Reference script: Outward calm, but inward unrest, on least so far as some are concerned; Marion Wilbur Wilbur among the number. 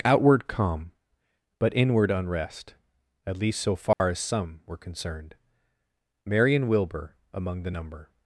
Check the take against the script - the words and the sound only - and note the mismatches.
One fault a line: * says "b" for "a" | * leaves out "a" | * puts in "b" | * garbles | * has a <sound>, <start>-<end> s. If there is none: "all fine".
* says "at" for "on"
* has a dropout, 3.9-4.0 s
* says "were" for "are"
* leaves out "Wilbur"